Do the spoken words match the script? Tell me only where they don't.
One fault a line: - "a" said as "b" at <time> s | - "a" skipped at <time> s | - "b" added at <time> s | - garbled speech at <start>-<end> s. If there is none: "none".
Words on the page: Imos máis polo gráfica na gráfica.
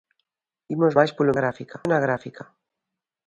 none